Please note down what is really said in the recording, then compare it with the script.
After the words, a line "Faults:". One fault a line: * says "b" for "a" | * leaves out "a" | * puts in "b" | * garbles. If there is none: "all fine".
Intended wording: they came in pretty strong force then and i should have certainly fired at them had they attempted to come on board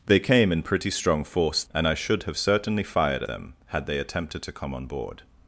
they came in pretty strong force and i should have certainly fired them had they attempted to come on board
Faults:
* leaves out "then"
* leaves out "at"